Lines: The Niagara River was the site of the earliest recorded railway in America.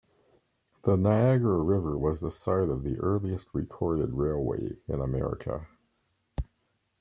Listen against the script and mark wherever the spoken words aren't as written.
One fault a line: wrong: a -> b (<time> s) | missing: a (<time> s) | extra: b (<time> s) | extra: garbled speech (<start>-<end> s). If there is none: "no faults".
no faults